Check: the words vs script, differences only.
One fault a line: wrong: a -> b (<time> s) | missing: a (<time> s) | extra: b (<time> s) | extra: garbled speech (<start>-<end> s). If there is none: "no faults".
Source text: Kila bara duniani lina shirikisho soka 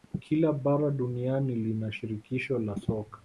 extra: la (2.6 s)